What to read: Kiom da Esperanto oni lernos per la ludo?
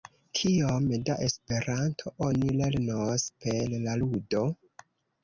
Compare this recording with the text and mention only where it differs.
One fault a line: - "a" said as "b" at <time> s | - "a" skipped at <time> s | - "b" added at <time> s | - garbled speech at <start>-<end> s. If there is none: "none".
none